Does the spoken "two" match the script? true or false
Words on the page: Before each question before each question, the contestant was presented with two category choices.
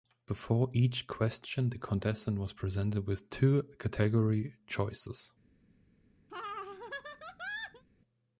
true